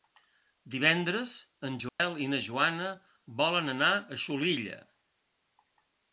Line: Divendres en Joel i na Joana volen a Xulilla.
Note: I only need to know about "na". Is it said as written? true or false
true